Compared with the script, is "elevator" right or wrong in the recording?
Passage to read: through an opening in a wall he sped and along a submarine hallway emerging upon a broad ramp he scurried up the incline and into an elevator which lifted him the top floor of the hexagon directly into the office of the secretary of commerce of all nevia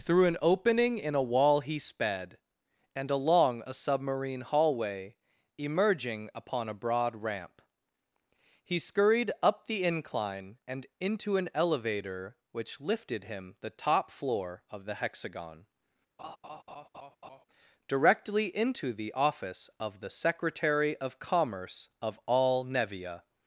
right